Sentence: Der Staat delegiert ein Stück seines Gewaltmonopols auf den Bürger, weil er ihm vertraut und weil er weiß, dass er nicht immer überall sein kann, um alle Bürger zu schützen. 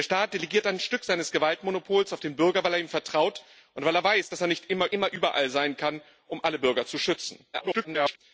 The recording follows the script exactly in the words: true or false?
false